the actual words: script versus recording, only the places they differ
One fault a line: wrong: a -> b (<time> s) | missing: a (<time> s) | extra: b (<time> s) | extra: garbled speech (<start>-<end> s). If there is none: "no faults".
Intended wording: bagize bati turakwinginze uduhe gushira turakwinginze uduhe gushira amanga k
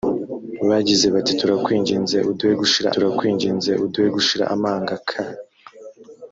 no faults